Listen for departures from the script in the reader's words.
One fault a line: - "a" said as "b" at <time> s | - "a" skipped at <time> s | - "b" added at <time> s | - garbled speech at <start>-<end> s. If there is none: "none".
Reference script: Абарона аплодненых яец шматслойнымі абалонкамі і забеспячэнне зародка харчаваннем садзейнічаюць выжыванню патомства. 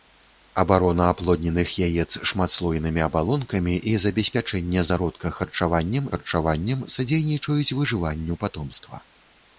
- "харчаваннем" added at 6.1 s